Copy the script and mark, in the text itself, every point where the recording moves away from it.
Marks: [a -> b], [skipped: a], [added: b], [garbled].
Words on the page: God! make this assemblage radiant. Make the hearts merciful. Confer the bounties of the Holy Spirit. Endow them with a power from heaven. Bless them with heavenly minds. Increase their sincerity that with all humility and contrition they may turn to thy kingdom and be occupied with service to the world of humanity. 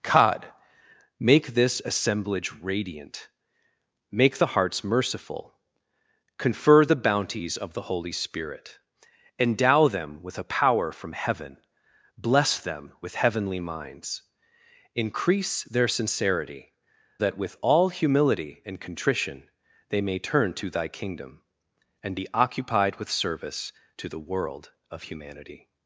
God! make this assemblage radiant. Make the hearts merciful. Confer the bounties of the Holy Spirit. Endow them with a power from heaven. Bless them with heavenly minds. Increase their sincerity that with all humility and contrition they may turn to thy kingdom and be occupied with service to the world of humanity.